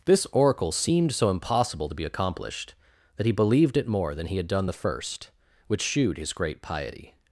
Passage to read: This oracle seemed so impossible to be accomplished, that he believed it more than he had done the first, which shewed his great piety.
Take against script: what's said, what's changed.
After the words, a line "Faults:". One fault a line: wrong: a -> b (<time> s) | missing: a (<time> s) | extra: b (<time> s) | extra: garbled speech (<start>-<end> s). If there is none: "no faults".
This oracle seemed so impossible to be accomplished, that he believed it more than he had done the first, which shewed his great piety.
Faults:
no faults